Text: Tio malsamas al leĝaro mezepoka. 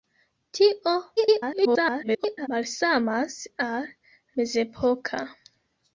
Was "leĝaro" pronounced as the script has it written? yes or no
no